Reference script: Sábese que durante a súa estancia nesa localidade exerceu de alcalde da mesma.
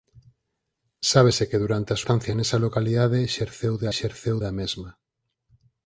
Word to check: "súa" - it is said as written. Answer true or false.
false